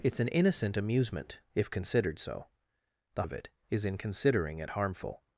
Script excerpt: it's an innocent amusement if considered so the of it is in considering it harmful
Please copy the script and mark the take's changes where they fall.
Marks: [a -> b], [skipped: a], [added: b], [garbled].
it's an innocent amusement if considered so the of it is in considering it harmful